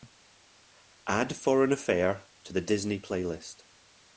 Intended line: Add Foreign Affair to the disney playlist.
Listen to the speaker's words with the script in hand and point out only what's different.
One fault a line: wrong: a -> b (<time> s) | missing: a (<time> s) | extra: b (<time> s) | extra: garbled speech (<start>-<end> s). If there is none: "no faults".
no faults